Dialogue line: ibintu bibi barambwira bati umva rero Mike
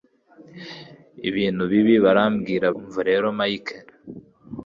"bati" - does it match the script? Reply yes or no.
no